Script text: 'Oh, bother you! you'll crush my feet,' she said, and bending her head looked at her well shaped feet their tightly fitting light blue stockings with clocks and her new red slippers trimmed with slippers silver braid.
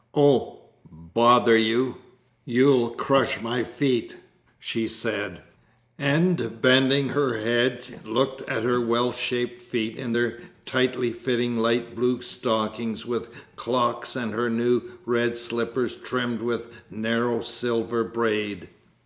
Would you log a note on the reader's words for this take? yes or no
yes